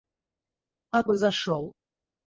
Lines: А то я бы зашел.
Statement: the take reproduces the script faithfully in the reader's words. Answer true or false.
false